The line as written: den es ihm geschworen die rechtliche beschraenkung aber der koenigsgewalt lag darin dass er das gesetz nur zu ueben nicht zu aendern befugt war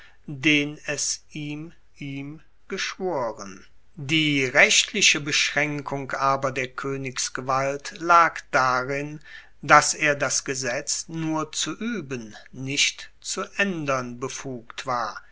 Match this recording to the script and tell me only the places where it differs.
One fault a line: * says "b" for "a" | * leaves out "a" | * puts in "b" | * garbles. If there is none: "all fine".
* puts in "ihm"